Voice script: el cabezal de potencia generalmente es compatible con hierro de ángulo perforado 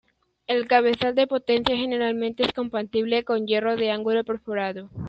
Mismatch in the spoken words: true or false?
false